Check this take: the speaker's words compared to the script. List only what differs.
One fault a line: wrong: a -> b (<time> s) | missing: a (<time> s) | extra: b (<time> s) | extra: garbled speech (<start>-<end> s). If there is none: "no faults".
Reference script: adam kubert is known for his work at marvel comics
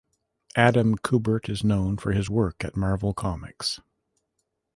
no faults